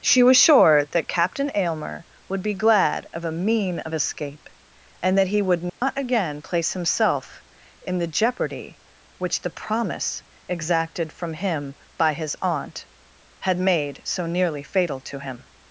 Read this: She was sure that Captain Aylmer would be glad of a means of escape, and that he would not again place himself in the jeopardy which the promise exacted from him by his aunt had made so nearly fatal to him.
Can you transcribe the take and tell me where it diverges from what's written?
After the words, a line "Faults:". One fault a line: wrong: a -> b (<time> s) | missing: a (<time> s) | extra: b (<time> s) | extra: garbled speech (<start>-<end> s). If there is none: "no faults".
She was sure that Captain Aylmer would be glad of a mean of escape, and that he would not again place himself in the jeopardy which the promise exacted from him by his aunt had made so nearly fatal to him.
Faults:
wrong: means -> mean (3.3 s)